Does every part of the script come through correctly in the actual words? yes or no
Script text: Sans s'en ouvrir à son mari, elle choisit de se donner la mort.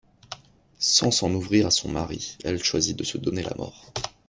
yes